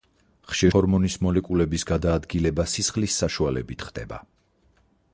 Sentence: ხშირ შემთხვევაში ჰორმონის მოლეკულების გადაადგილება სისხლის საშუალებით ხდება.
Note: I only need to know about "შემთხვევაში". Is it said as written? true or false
false